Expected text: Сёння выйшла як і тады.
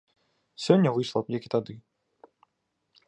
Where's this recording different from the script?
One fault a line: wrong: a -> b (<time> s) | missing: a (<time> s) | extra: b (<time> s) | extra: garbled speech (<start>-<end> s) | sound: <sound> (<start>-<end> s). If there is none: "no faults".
no faults